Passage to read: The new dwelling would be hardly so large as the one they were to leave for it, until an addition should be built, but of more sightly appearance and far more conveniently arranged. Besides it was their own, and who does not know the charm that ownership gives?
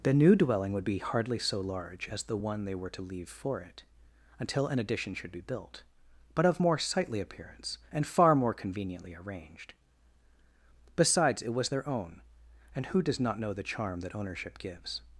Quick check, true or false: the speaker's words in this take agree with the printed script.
true